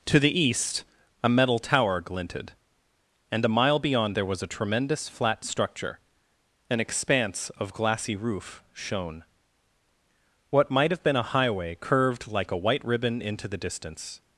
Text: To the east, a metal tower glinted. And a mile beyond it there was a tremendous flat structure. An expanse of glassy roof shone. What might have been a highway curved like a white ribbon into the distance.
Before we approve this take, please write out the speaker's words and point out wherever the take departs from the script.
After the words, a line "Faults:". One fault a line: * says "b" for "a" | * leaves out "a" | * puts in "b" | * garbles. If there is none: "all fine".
To the east, a metal tower glinted. And a mile beyond there was a tremendous flat structure. An expanse of glassy roof shone. What might have been a highway curved like a white ribbon into the distance.
Faults:
* leaves out "it"